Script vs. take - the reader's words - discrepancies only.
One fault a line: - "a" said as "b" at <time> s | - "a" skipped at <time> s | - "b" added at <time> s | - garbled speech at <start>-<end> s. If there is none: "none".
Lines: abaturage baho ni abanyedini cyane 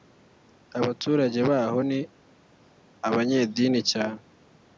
none